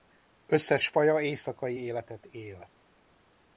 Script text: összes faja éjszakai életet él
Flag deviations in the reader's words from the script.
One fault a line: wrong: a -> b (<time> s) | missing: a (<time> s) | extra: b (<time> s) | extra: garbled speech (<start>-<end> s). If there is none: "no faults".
no faults